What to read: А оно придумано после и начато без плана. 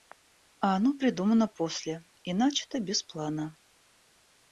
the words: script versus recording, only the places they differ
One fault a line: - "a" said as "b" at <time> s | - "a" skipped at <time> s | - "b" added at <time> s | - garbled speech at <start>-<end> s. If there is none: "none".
none